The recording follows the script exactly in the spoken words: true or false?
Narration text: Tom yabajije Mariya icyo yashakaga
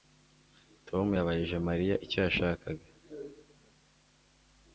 true